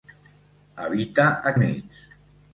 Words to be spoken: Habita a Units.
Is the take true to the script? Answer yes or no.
yes